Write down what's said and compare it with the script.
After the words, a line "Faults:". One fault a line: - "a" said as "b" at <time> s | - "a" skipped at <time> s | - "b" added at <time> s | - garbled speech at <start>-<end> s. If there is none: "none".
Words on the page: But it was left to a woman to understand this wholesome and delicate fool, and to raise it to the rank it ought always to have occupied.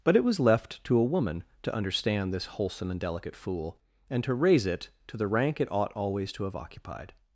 But it was left to a woman to understand this wholesome and delicate fool, and to raise it to the rank it ought always to have occupied.
Faults:
none